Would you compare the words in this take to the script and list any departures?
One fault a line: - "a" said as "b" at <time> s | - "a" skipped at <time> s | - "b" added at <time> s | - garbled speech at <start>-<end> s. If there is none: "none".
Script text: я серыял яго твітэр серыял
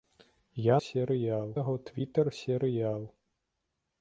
none